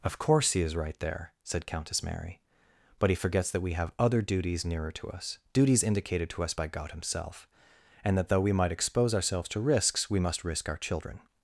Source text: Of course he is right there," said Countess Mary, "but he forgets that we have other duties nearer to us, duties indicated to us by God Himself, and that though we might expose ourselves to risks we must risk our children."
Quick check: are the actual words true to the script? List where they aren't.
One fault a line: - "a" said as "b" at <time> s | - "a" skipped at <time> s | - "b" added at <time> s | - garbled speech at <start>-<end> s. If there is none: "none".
none